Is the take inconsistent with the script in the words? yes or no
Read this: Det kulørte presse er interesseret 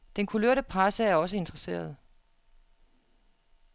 yes